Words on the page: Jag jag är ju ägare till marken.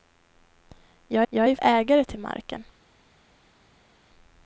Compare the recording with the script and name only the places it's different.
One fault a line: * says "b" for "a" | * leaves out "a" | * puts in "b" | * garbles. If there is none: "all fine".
all fine